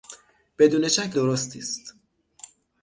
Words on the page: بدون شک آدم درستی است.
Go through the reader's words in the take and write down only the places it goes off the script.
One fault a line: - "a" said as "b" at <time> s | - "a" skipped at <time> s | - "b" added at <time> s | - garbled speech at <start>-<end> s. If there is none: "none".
- "آدم" skipped at 1.2 s